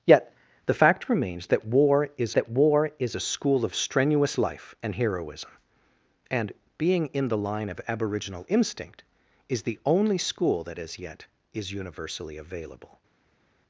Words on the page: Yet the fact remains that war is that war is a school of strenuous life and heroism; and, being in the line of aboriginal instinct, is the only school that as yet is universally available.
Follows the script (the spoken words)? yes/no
yes